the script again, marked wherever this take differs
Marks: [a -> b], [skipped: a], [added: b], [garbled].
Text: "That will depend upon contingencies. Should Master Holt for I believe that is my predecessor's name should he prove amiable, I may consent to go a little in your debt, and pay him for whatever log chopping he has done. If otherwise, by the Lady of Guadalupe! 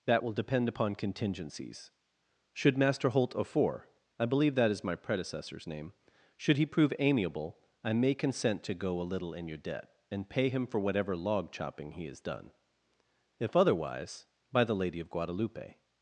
"That will depend upon contingencies. Should Master Holt [for -> of four] I believe that is my predecessor's name should he prove amiable, I may consent to go a little in your debt, and pay him for whatever log chopping he has done. If otherwise, by the Lady of Guadalupe!